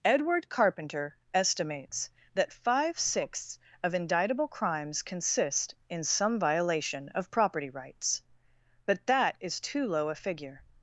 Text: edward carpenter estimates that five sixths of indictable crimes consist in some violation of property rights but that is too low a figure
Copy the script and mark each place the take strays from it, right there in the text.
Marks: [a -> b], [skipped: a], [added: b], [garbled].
edward carpenter estimates that five sixths of indictable crimes consist in some violation of property rights but that is too low a figure